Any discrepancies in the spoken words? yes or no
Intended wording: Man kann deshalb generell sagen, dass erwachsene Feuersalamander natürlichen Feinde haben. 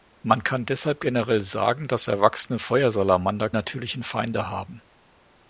no